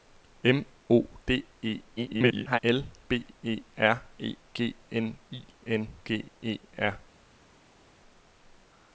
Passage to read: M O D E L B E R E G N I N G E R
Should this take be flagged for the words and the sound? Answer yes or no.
yes